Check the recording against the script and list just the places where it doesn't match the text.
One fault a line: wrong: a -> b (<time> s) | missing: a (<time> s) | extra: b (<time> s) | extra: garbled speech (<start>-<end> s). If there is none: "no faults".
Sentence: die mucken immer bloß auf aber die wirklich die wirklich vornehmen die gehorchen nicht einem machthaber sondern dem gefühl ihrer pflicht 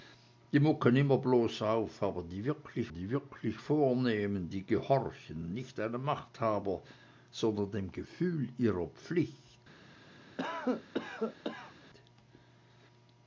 no faults